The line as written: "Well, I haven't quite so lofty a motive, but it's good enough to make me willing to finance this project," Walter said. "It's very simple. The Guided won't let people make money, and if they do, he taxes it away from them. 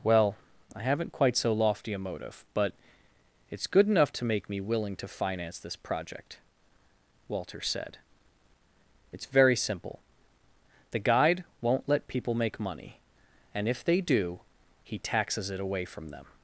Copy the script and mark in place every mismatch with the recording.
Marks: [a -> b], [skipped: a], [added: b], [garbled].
"Well, I haven't quite so lofty a motive, but it's good enough to make me willing to finance this project," Walter said. "It's very simple. The [Guided -> Guide] won't let people make money, and if they do, he taxes it away from them.